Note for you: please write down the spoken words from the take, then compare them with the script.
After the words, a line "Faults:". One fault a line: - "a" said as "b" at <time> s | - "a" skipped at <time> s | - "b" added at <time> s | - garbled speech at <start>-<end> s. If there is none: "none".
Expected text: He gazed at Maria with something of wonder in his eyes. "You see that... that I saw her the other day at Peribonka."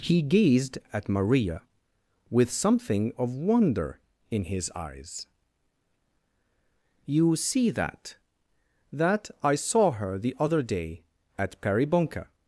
He gazed at Maria with something of wonder in his eyes. "You see that... that I saw her the other day at Peribonka."
Faults:
none